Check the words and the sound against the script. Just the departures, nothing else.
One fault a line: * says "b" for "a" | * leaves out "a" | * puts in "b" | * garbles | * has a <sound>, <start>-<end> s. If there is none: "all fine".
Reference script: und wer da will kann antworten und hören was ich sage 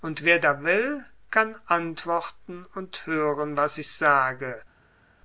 all fine